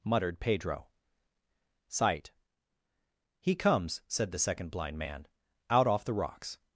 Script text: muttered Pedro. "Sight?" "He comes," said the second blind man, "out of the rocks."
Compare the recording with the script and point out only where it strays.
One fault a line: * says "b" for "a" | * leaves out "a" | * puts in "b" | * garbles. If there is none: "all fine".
* says "off" for "of"